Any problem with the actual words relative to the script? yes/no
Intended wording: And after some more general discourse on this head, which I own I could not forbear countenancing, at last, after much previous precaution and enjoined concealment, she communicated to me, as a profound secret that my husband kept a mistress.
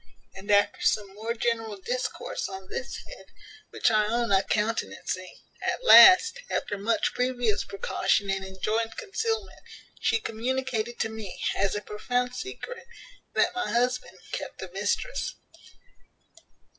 yes